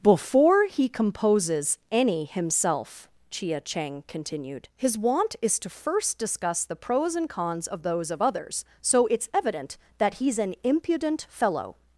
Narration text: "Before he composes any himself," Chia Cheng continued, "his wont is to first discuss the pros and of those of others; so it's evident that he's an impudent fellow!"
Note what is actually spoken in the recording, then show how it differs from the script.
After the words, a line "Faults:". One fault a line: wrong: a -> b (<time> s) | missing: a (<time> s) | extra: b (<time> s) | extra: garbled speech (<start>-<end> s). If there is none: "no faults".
"Before he composes any himself," Chia Cheng continued, "his wont is to first discuss the pros and cons of those of others; so it's evident that he's an impudent fellow!"
Faults:
extra: cons (7.3 s)